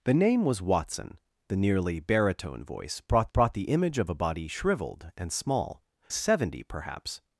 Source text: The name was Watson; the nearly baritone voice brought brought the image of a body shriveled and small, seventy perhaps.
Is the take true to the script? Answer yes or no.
yes